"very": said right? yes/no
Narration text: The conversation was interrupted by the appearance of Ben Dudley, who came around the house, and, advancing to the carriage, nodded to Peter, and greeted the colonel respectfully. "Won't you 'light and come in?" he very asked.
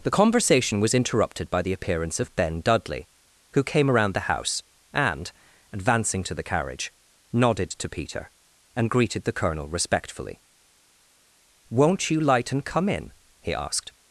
no